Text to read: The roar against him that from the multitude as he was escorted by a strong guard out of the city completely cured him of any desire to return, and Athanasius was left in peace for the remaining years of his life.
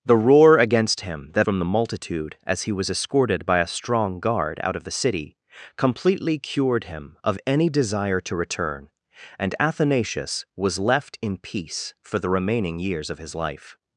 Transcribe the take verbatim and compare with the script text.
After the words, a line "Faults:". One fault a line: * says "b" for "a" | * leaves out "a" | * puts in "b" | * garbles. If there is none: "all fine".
The roar against him that from the multitude as he was escorted by a strong guard out of the city completely cured him of any desire to return, and Athanasius was left in peace for the remaining years of his life.
Faults:
all fine